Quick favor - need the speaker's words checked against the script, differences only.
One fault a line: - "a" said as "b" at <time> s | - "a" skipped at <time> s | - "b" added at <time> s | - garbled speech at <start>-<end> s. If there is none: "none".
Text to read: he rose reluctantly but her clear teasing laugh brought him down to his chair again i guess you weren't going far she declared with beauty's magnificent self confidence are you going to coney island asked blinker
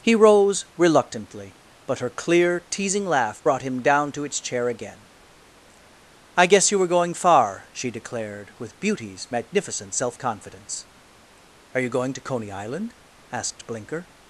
- "his" said as "its" at 4.2 s
- "weren't" said as "were" at 6.8 s